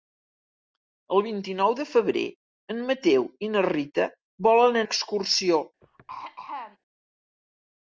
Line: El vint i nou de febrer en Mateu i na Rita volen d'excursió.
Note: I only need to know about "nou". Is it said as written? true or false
true